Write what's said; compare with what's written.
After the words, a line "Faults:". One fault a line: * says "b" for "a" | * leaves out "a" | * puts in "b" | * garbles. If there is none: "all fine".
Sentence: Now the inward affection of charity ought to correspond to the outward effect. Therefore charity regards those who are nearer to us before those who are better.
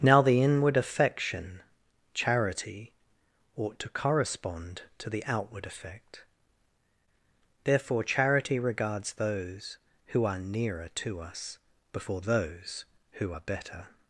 Now the inward affection charity ought to correspond to the outward effect. Therefore charity regards those who are nearer to us before those who are better.
Faults:
* leaves out "of"